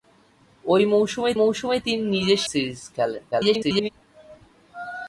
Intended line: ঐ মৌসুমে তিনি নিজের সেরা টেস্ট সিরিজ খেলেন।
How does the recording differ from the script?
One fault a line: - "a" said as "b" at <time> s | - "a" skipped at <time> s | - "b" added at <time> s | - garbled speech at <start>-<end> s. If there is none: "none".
- "মৌসুমে" added at 1.4 s
- "সেরা টেস্ট" skipped at 2.4 s
- garbled speech at 3.3-3.9 s